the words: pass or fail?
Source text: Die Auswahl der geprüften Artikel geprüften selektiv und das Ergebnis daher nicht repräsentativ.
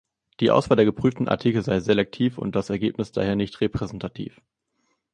fail